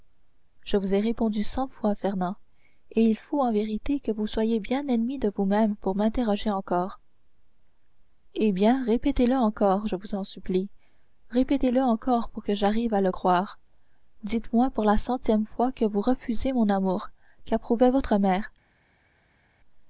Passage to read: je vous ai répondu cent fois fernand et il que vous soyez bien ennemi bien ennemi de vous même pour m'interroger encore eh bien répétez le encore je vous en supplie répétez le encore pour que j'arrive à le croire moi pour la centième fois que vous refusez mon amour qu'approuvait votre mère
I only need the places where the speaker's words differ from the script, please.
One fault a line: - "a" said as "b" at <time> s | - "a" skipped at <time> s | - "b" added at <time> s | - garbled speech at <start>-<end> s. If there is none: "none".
- "faut en vérité" added at 3.1 s
- "bien ennemi" skipped at 5.2 s
- "dites" added at 14.2 s